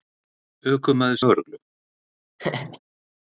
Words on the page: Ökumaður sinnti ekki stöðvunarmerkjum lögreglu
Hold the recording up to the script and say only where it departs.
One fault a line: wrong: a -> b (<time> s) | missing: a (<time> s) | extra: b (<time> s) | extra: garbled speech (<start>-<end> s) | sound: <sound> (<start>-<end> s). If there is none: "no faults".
missing: sinnti ekki stöðvunarmerkjum (1.2 s)
sound: laugh (2.4-2.8 s)